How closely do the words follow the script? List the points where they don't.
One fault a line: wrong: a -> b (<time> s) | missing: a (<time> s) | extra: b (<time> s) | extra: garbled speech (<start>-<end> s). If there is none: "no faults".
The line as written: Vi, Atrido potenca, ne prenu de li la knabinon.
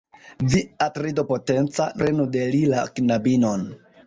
missing: ne (1.9 s)